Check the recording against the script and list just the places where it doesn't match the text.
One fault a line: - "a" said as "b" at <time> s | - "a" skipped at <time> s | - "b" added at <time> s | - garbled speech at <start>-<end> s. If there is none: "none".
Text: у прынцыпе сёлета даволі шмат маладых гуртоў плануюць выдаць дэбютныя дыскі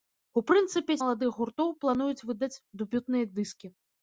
- "сёлета даволі шмат" skipped at 0.9 s